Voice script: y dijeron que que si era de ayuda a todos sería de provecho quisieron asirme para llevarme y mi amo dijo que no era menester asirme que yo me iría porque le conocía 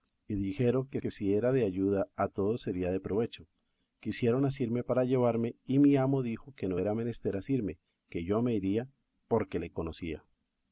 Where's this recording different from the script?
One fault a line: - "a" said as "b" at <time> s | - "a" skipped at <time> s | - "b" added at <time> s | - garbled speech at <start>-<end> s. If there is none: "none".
none